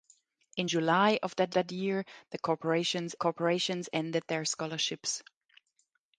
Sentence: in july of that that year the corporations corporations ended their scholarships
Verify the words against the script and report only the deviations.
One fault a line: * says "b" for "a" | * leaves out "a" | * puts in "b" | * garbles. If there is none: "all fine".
all fine